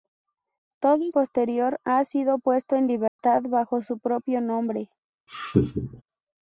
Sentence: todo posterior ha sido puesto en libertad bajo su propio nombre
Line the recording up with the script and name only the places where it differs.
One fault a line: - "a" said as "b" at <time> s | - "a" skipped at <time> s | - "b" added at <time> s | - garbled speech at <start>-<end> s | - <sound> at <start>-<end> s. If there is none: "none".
- dropout at 3.1-3.2 s
- laugh at 5.3-6.0 s